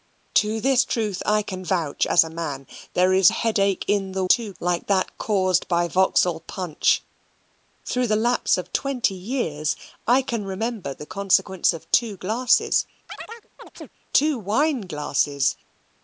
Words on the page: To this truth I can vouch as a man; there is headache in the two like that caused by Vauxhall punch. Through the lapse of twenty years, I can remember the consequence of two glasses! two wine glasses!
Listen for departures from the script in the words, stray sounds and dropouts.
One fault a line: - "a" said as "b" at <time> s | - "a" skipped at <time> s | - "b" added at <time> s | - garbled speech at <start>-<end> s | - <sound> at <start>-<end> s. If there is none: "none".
- chirp at 13.1-13.9 s